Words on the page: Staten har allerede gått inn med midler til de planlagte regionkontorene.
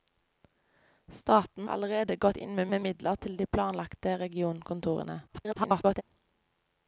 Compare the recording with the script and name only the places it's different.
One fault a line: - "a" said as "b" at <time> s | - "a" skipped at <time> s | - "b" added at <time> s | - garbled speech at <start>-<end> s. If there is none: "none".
- "har" skipped at 1.7 s
- "med" added at 2.7 s
- garbled speech at 5.3-6.0 s